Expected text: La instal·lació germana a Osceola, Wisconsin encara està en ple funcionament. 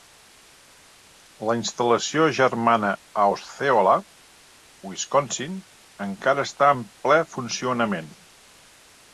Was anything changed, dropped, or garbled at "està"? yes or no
no